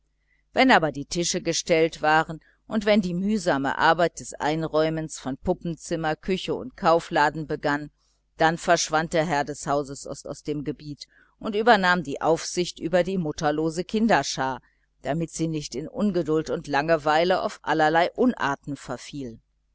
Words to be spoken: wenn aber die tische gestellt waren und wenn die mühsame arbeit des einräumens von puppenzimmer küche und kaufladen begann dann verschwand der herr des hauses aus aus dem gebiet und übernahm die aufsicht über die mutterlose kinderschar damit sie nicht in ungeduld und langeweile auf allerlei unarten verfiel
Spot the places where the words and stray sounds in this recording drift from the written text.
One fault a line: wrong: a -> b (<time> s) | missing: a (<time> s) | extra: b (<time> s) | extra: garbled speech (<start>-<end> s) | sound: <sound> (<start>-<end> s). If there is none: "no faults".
no faults